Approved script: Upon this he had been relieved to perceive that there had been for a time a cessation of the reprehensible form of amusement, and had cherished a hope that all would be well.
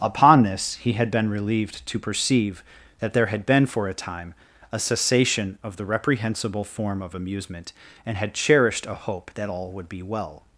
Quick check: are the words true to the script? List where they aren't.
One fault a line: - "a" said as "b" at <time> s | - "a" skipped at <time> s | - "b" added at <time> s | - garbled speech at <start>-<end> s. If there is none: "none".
none